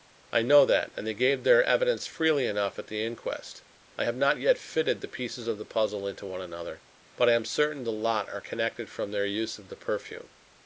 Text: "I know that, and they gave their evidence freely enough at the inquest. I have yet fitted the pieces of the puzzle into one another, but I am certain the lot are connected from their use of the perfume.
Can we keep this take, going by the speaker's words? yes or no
no